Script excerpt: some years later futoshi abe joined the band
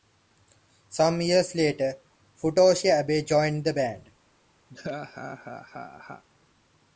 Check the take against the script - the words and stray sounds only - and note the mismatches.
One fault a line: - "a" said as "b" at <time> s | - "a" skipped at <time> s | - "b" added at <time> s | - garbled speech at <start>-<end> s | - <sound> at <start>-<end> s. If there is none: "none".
- laugh at 4.7-6.2 s